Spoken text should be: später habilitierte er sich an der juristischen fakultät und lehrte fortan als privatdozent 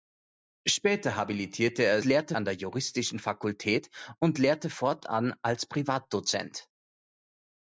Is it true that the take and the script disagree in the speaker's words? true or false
true